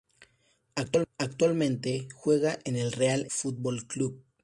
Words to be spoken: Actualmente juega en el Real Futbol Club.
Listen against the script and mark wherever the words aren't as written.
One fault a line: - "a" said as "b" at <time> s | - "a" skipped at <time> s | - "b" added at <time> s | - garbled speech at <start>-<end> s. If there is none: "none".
none